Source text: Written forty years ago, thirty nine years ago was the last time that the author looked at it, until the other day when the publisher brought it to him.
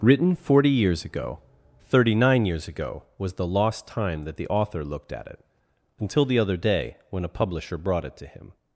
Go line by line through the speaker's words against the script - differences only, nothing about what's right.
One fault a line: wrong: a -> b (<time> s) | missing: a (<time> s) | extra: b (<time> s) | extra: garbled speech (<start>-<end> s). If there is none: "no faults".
wrong: last -> lost (3.5 s)
wrong: the -> a (7.2 s)